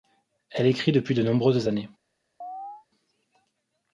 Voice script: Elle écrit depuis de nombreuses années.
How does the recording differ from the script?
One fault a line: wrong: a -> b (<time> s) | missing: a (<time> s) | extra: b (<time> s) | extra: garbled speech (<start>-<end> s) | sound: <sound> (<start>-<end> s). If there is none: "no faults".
sound: chirp (2.4-2.9 s)